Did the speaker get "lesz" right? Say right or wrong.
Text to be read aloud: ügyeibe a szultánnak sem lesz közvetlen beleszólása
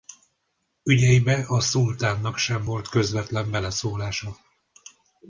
wrong